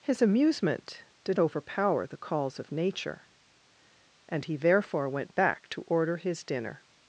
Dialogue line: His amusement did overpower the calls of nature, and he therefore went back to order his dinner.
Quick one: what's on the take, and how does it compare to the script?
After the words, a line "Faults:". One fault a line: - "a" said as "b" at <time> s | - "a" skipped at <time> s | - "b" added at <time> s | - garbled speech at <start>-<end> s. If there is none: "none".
His amusement did overpower the calls of nature, and he therefore went back to order his dinner.
Faults:
none